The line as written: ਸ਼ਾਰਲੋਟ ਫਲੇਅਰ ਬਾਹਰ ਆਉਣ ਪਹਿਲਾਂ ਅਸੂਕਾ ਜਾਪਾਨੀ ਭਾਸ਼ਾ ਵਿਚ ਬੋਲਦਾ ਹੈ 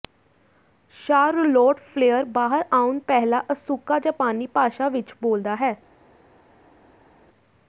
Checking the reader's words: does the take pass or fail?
pass